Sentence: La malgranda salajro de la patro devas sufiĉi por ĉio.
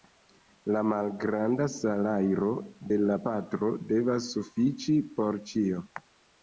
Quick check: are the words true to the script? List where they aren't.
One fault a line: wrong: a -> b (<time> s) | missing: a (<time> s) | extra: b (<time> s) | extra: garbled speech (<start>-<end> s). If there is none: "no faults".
no faults